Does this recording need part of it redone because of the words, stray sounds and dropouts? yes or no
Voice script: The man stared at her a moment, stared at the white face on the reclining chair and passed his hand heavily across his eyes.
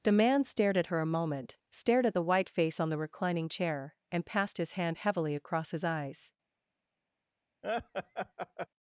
yes